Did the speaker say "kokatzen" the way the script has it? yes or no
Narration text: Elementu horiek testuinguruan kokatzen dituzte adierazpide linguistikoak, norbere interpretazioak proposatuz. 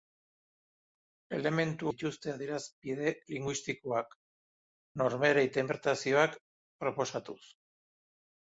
no